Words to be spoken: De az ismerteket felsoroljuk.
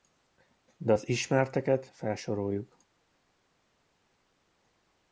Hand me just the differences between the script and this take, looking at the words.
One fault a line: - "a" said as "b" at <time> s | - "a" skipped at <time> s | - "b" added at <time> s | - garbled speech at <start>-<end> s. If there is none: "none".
none